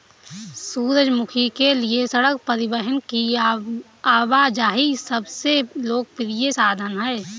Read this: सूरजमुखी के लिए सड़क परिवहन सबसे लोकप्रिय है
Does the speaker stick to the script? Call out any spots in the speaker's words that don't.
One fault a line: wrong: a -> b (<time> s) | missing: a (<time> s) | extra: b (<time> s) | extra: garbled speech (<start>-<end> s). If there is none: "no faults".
extra: की आवाजाही (3.1 s)
extra: साधन (6.5 s)